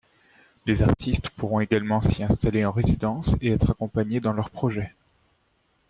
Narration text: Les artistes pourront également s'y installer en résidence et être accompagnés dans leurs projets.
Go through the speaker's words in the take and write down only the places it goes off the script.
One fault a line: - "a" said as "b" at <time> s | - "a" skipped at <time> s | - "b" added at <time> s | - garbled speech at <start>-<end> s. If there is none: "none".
none